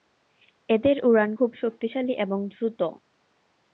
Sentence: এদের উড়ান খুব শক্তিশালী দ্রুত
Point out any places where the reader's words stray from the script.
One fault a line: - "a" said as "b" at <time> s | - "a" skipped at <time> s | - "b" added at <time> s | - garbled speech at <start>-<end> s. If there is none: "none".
- "এবং" added at 2.1 s